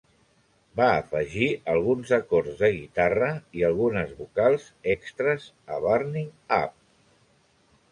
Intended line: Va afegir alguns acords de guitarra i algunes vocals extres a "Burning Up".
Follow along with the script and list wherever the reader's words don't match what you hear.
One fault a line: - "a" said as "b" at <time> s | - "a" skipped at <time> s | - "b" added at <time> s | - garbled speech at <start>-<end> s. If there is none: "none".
none